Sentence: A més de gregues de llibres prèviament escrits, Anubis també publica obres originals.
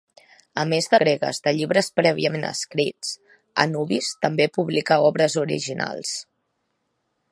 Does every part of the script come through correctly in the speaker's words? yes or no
yes